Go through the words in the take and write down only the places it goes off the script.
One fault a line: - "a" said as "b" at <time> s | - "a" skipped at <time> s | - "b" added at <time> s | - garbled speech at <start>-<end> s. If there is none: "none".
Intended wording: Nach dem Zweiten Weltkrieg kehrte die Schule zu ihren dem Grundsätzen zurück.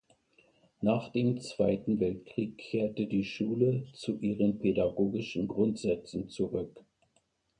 - "dem" said as "pädagogischen" at 4.6 s